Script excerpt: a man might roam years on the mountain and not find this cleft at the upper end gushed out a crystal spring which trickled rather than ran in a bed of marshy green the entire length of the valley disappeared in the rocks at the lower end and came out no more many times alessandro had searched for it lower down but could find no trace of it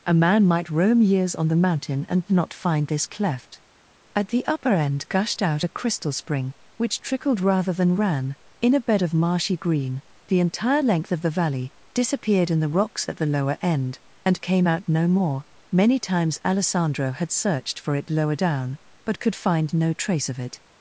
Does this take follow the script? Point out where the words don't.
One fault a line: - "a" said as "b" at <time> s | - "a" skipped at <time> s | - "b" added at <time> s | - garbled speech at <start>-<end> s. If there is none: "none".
none